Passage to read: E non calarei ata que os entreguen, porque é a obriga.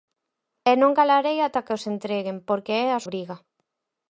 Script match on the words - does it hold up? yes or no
yes